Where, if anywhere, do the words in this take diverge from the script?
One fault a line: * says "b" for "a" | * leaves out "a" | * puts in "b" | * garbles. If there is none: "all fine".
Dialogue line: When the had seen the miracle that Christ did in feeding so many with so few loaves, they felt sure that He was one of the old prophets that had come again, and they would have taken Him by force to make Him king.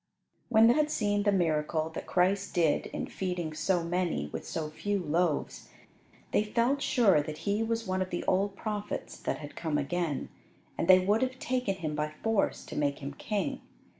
all fine